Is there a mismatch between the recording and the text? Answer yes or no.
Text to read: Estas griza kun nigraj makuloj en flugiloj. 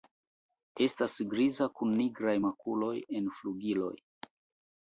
no